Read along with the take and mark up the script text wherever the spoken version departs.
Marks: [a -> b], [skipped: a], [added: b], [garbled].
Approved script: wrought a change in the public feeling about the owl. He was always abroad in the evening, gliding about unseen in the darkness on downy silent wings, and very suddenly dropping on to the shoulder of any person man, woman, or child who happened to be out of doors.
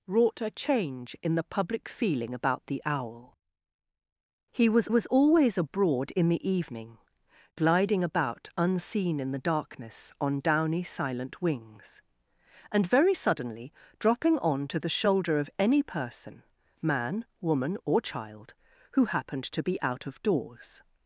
wrought a change in the public feeling about the owl. He was [added: was] always abroad in the evening, gliding about unseen in the darkness on downy silent wings, and very suddenly dropping on to the shoulder of any person man, woman, or child who happened to be out of doors.